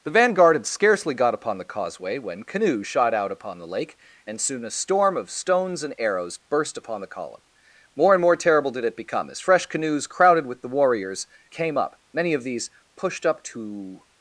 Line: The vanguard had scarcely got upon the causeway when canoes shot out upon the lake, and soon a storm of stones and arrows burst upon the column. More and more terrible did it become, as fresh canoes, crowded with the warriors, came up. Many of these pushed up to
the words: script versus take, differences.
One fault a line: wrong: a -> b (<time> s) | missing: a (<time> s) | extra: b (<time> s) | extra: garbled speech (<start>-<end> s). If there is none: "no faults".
no faults